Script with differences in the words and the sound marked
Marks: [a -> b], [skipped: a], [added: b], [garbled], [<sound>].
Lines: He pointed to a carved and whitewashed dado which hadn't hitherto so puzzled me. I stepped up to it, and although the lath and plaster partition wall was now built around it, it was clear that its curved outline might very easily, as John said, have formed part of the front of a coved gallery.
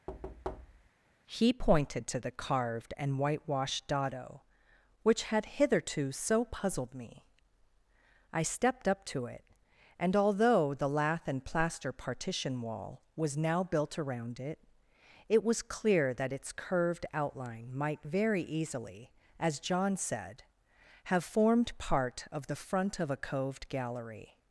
[thud] He pointed to [a -> the] carved and whitewashed dado which [hadn't -> had] hitherto so puzzled me. I stepped up to it, and although the lath and plaster partition wall was now built around it, it was clear that its curved outline might very easily, as John said, have formed part of the front of a coved gallery.